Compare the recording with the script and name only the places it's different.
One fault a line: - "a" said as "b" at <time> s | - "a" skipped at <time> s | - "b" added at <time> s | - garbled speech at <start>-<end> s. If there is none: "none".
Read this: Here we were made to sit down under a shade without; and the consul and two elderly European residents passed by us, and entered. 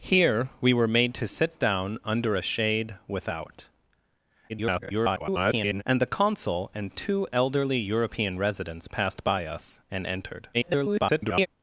- garbled speech at 4.5-5.8 s
- garbled speech at 10.5-11.5 s